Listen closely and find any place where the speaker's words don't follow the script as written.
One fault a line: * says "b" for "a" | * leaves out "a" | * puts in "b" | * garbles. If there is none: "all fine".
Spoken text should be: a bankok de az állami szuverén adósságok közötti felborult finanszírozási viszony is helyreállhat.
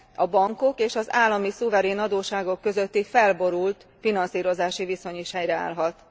* says "és" for "de"